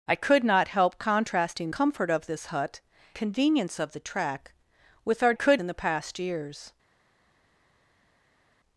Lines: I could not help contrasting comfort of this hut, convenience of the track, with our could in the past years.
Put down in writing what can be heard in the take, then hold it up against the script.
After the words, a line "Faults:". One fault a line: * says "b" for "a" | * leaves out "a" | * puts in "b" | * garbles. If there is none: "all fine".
I could not help contrasting comfort of this hut, convenience of the track, with our could in the past years.
Faults:
all fine